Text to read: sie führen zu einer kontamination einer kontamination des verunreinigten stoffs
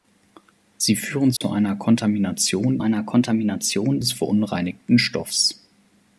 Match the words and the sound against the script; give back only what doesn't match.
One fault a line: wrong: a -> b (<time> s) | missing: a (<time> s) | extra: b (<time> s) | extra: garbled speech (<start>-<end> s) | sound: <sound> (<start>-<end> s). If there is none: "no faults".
sound: dropout (1.4-1.4 s)